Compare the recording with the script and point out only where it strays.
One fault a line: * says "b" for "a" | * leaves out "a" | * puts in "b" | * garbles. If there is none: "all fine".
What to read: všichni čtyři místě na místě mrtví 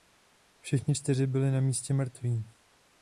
* says "byli" for "místě"